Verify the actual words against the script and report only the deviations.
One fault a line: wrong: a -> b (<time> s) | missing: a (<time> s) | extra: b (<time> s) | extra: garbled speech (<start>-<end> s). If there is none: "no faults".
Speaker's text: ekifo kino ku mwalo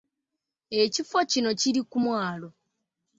extra: kiri (1.6 s)